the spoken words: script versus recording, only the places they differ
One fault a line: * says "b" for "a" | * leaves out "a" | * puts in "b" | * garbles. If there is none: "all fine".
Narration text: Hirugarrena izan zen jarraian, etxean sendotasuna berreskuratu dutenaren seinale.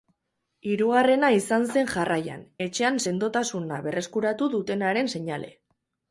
all fine